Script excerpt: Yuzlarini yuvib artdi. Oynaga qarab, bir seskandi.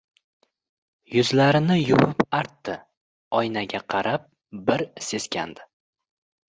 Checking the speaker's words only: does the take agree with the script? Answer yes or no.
yes